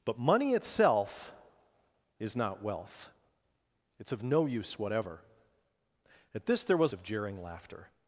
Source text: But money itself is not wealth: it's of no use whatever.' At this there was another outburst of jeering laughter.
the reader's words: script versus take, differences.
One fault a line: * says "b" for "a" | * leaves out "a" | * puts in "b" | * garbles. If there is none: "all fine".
* leaves out "another outburst"